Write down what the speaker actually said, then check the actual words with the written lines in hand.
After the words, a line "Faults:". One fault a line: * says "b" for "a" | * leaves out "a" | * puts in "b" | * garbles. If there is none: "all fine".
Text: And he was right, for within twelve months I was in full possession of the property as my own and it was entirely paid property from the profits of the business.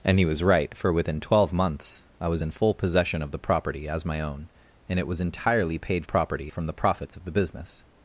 And he was right, for within twelve months I was in full possession of the property as my own and it was entirely paid property from the profits of the business.
Faults:
all fine